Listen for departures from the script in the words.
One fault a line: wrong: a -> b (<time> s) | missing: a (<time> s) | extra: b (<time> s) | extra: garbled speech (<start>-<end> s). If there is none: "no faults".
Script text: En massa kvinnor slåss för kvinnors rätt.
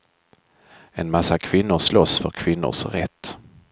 no faults